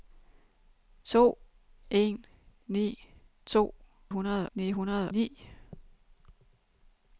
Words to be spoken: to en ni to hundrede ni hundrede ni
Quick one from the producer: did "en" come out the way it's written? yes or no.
yes